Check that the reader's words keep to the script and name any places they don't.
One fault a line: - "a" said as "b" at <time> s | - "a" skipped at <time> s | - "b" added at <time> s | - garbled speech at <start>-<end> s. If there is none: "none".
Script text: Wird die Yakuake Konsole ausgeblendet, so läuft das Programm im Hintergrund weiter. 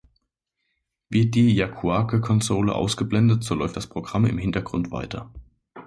none